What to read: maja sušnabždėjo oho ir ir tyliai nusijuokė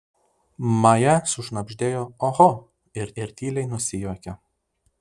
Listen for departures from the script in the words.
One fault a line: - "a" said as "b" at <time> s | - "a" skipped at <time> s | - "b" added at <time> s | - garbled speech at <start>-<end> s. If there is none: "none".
none